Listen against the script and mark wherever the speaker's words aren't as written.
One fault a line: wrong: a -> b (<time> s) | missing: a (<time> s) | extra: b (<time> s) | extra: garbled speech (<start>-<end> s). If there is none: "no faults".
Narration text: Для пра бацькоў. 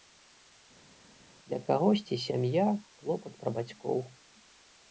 extra: кагосьці сям'я клопат (1.7 s)